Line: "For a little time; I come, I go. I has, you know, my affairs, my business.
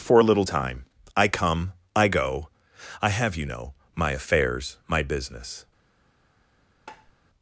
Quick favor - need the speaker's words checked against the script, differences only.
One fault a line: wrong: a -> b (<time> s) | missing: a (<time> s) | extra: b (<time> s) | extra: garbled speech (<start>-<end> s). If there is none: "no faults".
wrong: has -> have (3.1 s)